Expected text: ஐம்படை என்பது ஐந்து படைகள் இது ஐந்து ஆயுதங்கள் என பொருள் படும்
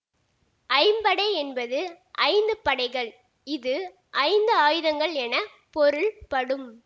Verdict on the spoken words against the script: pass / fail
pass